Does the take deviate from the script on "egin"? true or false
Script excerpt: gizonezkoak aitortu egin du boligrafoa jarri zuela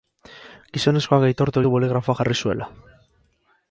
true